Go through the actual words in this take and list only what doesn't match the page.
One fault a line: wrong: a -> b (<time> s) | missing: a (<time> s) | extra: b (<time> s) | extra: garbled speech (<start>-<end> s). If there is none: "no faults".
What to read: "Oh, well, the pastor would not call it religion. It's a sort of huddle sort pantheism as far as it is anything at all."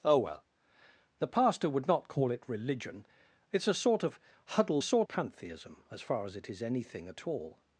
no faults